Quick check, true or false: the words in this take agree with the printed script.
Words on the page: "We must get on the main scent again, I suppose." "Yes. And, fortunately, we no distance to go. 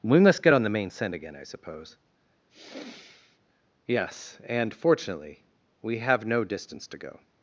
false